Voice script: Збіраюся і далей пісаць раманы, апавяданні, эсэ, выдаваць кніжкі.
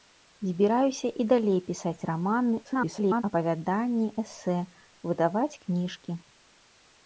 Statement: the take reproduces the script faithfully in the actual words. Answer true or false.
false